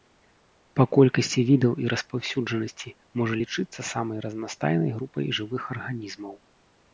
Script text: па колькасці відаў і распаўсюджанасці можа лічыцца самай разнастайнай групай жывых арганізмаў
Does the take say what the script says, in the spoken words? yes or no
yes